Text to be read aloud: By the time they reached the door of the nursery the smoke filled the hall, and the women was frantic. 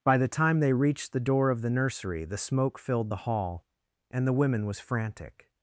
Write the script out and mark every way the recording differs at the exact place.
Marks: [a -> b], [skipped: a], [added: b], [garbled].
By the time they reached the door of the nursery the smoke filled the hall, and the women was frantic.